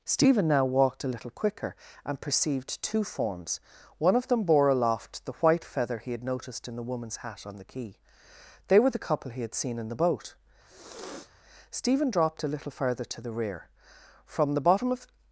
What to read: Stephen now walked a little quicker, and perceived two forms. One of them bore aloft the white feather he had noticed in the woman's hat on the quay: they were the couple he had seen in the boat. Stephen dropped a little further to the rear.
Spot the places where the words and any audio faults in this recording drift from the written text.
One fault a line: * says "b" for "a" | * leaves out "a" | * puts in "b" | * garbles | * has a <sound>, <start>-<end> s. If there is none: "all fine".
* has a sniff, 10.6-11.3 s
* puts in "From the bottom of"